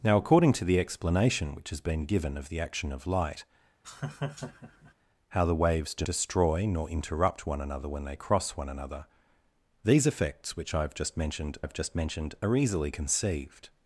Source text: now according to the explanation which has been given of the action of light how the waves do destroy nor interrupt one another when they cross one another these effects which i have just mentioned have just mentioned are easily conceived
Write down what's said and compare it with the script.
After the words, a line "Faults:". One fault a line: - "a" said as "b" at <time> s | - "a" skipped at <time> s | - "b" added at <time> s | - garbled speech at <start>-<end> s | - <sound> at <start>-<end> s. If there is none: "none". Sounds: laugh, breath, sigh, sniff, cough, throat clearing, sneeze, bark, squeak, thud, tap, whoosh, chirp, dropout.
now according to the explanation which has been given of the action of light how the waves do destroy nor interrupt one another when they cross one another these effects which i have just mentioned have just mentioned are easily conceived
Faults:
- laugh at 3.8-4.9 s